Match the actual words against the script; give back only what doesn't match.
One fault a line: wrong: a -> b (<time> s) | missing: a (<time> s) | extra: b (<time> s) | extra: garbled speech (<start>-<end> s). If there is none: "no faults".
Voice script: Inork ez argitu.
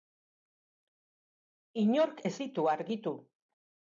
extra: ditu (2.4 s)